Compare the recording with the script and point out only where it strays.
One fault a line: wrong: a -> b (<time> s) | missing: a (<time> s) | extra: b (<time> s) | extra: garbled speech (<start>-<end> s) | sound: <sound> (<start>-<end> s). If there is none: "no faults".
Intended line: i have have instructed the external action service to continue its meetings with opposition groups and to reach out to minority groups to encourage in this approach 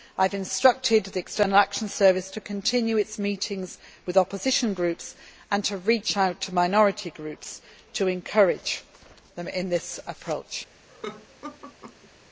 missing: have (0.3 s)
extra: them (9.3 s)
sound: laugh (10.9-12.1 s)